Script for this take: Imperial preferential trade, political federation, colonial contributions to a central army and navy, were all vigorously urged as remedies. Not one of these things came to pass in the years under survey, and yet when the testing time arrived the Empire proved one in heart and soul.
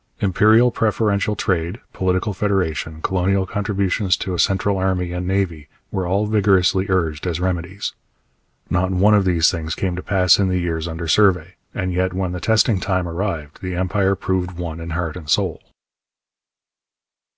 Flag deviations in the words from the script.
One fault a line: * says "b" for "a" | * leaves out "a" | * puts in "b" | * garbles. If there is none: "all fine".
all fine